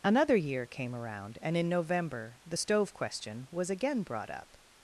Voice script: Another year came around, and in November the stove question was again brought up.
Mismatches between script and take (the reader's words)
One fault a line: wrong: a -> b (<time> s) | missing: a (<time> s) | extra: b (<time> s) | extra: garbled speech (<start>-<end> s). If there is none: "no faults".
no faults